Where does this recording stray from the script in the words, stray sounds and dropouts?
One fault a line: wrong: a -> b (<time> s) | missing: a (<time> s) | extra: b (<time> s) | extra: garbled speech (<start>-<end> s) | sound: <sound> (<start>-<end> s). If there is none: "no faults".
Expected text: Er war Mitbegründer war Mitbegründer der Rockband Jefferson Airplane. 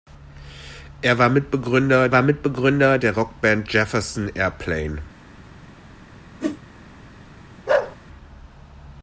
sound: whoosh (6.4-6.6 s)
sound: bark (7.7-8.0 s)